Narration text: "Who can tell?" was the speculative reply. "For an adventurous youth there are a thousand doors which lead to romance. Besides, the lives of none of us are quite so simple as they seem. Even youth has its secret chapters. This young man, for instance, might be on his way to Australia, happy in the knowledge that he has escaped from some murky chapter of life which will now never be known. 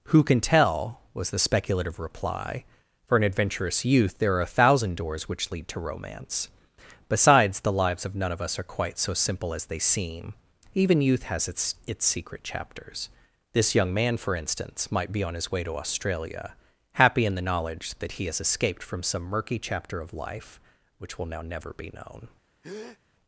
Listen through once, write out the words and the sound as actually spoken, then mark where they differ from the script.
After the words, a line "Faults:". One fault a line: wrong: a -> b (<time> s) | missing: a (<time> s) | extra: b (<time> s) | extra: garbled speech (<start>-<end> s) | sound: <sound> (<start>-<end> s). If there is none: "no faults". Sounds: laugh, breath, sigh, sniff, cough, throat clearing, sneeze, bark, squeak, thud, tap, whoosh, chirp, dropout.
"Who can tell?" was the speculative reply. "For an adventurous youth there are a thousand doors which lead to romance. Besides, the lives of none of us are quite so simple as they seem. Even youth has its its secret chapters. This young man, for instance, might be on his way to Australia, happy in the knowledge that he has escaped from some murky chapter of life which will now never be known.
Faults:
extra: its (11.8 s)
sound: breath (22.6-23.0 s)